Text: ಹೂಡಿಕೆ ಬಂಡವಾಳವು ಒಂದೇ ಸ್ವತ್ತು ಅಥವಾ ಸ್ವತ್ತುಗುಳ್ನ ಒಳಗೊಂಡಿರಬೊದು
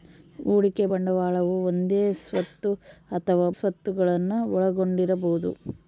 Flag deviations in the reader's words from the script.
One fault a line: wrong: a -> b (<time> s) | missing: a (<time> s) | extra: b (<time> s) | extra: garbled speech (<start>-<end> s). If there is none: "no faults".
no faults